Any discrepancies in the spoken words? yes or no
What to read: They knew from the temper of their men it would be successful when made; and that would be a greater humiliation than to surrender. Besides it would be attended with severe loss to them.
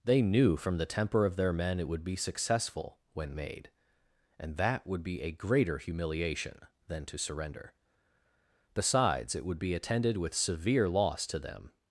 no